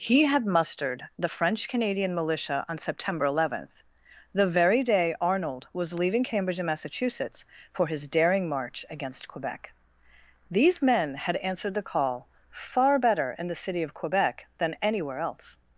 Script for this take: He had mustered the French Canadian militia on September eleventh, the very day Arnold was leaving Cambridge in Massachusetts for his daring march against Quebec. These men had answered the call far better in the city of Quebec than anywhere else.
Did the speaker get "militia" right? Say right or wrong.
right